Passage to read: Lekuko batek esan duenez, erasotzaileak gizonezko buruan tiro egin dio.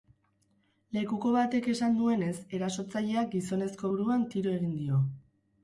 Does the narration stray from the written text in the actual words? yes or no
no